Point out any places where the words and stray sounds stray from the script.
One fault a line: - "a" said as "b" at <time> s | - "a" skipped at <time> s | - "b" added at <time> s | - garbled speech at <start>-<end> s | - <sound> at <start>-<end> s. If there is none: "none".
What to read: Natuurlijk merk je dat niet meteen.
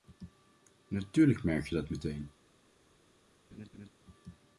- "niet" skipped at 1.9 s
- laugh at 3.5-3.9 s